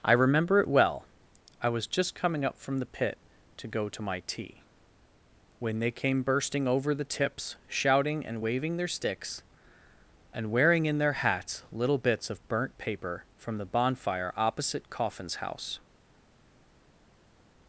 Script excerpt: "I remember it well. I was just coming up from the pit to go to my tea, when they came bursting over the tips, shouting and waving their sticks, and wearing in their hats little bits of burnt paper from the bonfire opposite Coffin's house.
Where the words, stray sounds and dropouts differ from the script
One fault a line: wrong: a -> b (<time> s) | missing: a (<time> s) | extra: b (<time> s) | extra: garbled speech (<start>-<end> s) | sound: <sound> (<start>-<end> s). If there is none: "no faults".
no faults